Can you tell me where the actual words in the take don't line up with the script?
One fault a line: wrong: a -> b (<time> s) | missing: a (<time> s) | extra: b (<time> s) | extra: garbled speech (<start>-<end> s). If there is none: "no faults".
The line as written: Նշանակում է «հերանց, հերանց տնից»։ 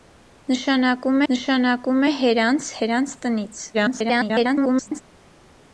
extra: նշանակում (1.3 s)
extra: garbled speech (3.7-5.0 s)